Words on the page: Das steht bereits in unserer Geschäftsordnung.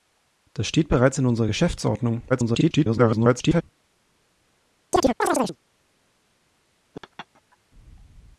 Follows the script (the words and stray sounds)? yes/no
no